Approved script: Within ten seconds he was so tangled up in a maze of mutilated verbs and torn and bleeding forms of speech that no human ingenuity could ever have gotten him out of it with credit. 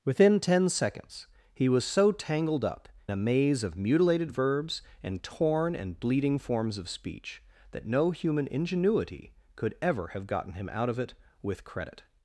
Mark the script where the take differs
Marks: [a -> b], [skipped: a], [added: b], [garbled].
Within ten seconds he was so tangled up [skipped: in] a maze of mutilated verbs and torn and bleeding forms of speech that no human ingenuity could ever have gotten him out of it with credit.